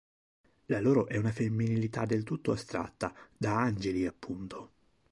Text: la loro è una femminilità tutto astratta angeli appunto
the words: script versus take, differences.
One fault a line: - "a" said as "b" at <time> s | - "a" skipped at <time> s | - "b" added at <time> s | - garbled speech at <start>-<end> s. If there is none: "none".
- "del" added at 2.0 s
- "da" added at 3.4 s